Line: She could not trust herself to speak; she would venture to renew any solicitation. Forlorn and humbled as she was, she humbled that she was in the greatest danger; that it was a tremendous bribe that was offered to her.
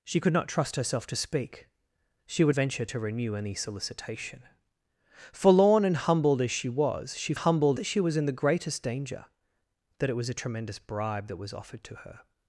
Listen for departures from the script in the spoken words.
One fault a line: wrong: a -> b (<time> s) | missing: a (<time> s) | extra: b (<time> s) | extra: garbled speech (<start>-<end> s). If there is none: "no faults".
no faults